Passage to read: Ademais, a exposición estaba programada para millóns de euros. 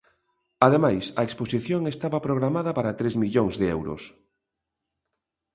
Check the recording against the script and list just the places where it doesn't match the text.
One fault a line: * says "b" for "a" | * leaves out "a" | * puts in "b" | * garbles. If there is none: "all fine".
* puts in "tres"